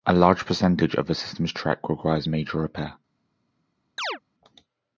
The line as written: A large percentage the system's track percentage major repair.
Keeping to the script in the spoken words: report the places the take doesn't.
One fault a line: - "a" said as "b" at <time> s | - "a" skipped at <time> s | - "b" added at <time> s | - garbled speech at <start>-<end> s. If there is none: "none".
- "of" added at 0.9 s
- "percentage" said as "requires" at 1.9 s